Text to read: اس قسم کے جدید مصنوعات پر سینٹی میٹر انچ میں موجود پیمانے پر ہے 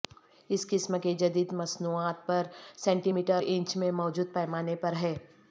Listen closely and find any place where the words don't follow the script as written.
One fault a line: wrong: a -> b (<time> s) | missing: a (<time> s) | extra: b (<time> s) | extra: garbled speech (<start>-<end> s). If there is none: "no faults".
no faults